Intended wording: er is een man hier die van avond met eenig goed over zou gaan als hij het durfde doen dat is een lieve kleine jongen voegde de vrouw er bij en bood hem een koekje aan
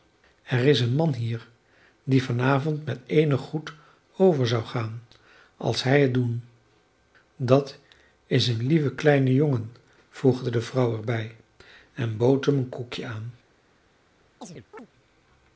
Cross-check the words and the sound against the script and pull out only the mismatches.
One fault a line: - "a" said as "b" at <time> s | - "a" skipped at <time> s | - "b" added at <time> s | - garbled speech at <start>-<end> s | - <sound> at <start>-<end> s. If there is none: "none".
- "durfde" skipped at 6.2 s
- chirp at 14.4-14.9 s